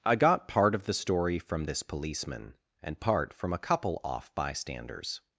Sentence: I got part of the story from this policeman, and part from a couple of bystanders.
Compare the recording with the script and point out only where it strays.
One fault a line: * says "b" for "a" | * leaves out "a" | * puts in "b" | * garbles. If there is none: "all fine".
* says "off" for "of"